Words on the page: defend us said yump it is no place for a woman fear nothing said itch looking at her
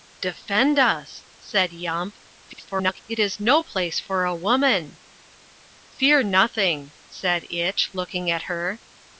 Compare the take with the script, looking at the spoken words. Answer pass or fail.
fail